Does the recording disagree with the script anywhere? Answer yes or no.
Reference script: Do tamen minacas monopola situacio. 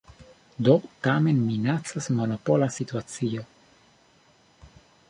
no